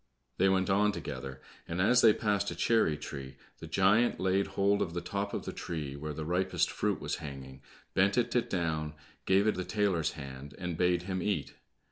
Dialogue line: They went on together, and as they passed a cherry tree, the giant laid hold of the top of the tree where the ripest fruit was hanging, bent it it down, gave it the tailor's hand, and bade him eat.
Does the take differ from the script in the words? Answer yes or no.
no